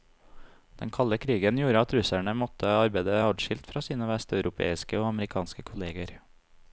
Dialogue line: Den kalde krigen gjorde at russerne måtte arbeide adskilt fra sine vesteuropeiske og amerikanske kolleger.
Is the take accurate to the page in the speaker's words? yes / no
yes